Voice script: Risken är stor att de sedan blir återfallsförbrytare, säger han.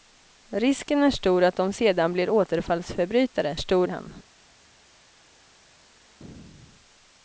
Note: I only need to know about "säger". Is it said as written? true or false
false